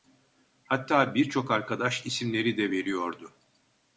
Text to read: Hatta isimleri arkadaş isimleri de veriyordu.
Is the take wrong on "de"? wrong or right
right